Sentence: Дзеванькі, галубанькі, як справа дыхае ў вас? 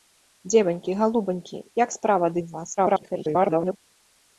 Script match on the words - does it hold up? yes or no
no